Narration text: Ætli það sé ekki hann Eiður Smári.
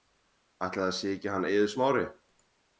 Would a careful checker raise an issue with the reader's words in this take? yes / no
no